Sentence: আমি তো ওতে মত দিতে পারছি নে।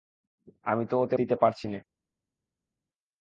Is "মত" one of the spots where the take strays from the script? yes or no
yes